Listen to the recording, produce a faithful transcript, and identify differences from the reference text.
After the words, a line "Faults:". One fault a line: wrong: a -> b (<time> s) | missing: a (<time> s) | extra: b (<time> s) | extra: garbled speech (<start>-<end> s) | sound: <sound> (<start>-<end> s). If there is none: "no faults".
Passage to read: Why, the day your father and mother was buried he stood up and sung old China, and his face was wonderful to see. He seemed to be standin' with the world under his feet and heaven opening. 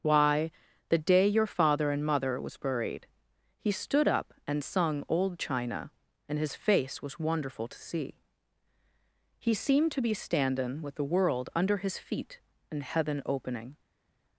Why, the day your father and mother was buried he stood up and sung old China, and his face was wonderful to see. He seemed to be standin' with the world under his feet and heaven opening.
Faults:
no faults